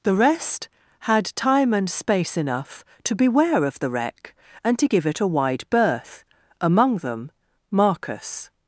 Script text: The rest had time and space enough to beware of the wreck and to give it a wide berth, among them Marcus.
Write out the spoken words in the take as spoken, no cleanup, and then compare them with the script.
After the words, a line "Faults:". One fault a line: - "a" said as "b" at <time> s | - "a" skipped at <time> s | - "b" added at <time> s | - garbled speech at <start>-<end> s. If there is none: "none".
The rest had time and space enough to beware of the wreck and to give it a wide berth, among them Marcus.
Faults:
none